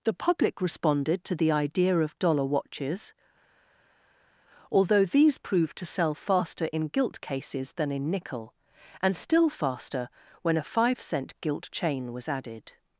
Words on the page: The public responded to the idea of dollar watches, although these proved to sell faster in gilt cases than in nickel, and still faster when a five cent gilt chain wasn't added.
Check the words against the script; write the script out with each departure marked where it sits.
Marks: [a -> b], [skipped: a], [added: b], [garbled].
The public responded to the idea of dollar watches, although these proved to sell faster in gilt cases than in nickel, and still faster when a five cent gilt chain [wasn't -> was] added.